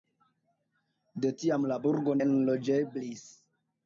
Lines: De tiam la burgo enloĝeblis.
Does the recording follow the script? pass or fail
pass